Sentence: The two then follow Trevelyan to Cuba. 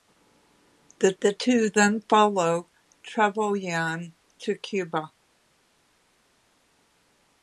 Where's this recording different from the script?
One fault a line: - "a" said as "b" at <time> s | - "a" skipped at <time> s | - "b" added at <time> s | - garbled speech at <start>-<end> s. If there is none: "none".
- "the" added at 1.2 s